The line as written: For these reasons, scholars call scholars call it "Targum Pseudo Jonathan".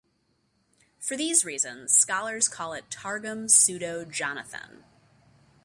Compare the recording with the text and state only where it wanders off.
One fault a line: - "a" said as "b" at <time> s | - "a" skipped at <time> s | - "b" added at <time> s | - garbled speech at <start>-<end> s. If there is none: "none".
- "scholars call" skipped at 2.7 s